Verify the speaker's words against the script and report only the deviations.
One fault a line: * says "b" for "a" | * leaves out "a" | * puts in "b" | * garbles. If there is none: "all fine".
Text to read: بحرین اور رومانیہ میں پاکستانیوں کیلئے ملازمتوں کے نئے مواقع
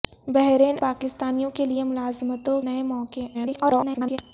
* leaves out "اور رومانیہ میں"
* leaves out "کے"
* garbles